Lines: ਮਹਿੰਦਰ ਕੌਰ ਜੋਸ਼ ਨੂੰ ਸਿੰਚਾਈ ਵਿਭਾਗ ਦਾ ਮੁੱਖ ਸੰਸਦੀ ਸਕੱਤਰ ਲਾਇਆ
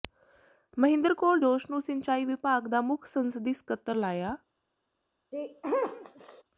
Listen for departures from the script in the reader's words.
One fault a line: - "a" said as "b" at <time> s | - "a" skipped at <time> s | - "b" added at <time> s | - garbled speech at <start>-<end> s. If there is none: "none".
none